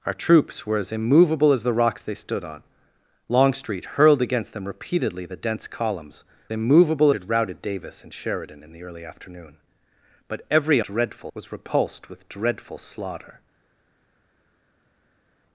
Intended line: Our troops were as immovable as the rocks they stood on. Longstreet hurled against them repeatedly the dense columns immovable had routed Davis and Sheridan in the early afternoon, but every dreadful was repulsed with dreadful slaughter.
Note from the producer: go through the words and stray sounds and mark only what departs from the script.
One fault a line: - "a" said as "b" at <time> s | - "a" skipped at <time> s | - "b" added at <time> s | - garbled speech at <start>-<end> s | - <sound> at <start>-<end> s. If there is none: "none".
none